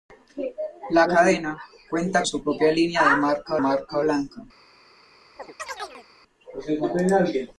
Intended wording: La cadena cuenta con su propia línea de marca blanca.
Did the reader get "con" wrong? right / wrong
wrong